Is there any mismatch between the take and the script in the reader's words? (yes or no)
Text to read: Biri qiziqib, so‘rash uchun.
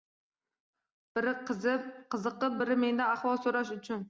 yes